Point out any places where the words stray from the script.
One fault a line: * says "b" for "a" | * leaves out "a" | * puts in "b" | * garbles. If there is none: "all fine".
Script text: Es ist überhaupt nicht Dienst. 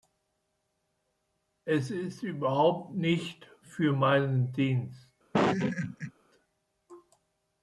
* puts in "für meinen"